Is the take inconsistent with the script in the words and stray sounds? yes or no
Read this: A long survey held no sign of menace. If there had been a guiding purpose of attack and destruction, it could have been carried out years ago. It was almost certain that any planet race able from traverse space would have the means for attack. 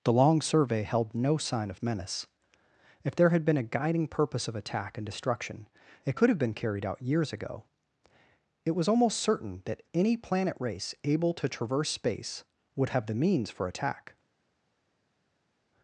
yes